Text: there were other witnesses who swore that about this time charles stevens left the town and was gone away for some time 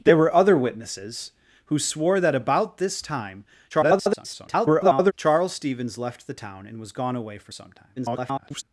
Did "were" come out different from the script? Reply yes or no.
no